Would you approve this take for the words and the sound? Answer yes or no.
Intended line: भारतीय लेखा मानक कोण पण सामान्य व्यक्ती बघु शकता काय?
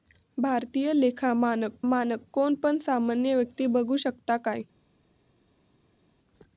no